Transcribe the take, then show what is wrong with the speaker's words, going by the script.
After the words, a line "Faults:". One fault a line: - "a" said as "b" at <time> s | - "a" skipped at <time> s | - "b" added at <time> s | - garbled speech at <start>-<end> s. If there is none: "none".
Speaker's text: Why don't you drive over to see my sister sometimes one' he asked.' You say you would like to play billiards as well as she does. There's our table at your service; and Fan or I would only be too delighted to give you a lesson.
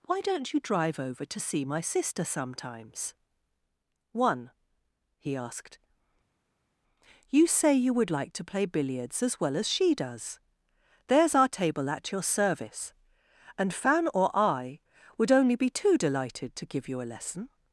Why don't you drive over to see my sister sometimes one' he asked.' You say you would like to play billiards as well as she does. There's our table at your service; and Fan or I would only be too delighted to give you a lesson.
Faults:
none